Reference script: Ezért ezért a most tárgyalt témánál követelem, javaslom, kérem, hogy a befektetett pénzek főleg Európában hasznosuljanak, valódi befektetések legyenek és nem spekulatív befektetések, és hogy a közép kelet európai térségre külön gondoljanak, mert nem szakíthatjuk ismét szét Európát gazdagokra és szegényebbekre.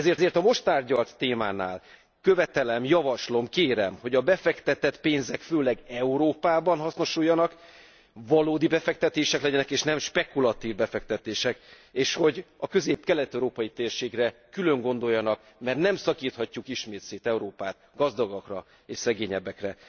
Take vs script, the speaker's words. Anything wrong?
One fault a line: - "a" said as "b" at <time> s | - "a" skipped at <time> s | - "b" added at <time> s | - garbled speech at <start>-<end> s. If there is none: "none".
none